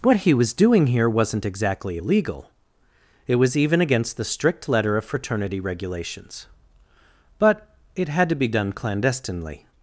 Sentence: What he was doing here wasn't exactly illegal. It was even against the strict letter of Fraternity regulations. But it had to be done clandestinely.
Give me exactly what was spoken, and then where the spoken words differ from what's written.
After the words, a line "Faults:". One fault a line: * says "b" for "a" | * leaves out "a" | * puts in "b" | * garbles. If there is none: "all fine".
What he was doing here wasn't exactly illegal. It was even against the strict letter of Fraternity regulations. But it had to be done clandestinely.
Faults:
all fine